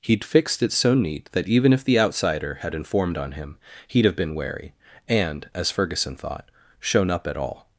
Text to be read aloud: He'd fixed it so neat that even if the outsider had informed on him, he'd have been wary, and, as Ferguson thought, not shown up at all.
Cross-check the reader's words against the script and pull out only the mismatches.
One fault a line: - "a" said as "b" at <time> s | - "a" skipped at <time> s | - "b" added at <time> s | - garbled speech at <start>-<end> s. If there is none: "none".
- "not" skipped at 6.5 s